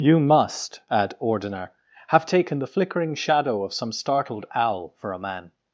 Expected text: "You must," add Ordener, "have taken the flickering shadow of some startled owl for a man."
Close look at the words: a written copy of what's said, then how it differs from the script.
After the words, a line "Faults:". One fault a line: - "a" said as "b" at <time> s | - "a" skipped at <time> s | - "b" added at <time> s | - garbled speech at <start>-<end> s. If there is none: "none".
"You must," add Ordener, "have taken the flickering shadow of some startled owl for a man."
Faults:
none